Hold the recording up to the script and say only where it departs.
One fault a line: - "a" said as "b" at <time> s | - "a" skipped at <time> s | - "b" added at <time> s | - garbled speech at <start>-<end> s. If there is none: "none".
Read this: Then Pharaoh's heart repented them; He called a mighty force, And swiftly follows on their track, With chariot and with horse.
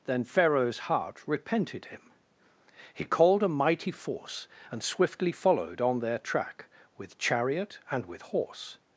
- "them" said as "him" at 1.9 s
- "follows" said as "followed" at 5.3 s